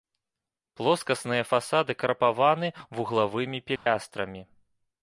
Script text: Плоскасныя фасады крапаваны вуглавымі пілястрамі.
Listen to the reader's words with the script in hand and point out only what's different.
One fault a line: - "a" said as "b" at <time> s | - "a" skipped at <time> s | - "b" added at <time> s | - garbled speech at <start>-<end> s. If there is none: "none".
none